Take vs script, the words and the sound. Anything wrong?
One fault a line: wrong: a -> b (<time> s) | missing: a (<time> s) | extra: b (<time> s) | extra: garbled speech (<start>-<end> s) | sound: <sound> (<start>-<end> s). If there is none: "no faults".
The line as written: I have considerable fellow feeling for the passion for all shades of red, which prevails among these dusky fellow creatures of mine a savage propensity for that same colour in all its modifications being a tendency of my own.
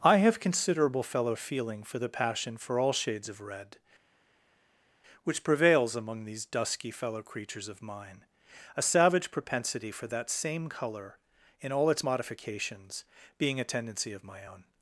no faults